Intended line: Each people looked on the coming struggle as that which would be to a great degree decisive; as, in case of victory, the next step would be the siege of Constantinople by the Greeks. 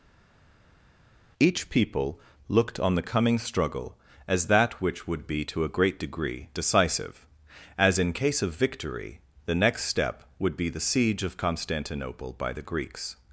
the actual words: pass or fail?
pass